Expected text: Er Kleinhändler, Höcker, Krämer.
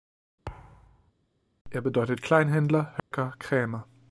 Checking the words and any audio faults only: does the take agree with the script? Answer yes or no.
no